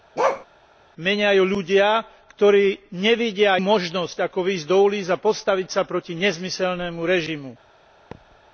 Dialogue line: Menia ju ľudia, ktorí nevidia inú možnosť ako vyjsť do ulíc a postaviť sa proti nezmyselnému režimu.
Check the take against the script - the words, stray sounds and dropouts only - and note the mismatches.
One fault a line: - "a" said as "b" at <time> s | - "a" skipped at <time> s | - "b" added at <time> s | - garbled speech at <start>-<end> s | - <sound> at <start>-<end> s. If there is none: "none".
- bark at 0.2-0.5 s
- "inú" skipped at 3.6 s
- thud at 8.1-8.4 s